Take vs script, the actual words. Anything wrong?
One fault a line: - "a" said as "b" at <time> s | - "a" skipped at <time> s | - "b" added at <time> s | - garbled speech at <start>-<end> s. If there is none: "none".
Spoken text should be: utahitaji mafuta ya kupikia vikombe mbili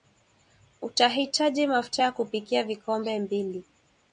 none